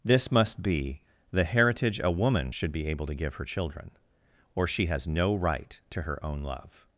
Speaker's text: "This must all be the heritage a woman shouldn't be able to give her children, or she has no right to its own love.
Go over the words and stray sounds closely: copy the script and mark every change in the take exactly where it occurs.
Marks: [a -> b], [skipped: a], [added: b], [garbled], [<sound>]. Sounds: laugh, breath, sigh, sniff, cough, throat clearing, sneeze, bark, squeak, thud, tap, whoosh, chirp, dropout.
"This must [skipped: all] be the heritage a woman [shouldn't -> should] be able to give her children, or she has no right to [its -> her] own love.